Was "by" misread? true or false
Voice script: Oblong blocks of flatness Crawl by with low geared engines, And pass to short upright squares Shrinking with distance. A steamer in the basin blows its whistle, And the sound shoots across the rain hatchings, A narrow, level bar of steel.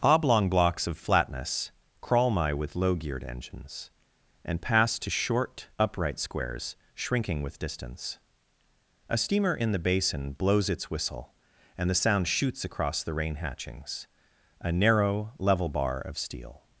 true